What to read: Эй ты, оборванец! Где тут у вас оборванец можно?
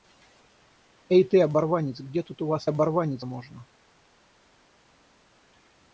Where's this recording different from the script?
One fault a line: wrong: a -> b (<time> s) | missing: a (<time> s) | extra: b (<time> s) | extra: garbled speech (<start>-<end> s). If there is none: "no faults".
no faults